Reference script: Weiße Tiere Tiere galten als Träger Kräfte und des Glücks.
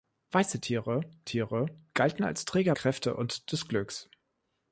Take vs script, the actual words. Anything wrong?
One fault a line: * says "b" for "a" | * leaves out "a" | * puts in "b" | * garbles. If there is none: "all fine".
all fine